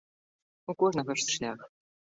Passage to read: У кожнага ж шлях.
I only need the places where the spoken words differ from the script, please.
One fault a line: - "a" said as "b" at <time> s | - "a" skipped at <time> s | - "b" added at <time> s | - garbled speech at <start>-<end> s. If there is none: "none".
none